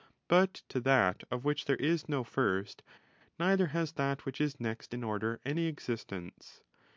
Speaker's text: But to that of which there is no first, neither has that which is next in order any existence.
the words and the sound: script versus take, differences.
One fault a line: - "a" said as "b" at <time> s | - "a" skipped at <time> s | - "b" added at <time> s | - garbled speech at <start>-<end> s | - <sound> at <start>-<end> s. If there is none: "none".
none